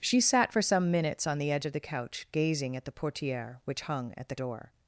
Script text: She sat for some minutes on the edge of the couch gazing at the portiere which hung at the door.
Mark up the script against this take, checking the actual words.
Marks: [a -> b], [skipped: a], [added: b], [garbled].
She sat for some minutes on the edge of the couch gazing at the portiere which hung at the door.